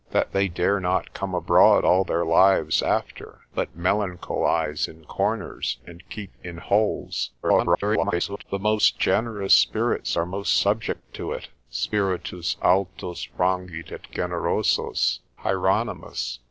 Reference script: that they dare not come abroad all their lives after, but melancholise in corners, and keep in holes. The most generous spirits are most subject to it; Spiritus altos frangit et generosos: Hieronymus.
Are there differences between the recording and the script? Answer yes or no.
yes